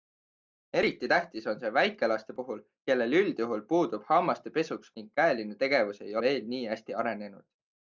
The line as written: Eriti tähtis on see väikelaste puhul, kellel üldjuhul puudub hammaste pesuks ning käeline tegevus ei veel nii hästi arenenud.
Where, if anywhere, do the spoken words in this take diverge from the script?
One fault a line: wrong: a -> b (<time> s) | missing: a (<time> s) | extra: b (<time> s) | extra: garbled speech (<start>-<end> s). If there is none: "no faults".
no faults